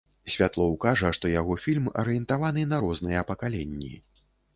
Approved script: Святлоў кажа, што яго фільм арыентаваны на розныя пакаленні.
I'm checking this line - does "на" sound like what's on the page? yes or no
yes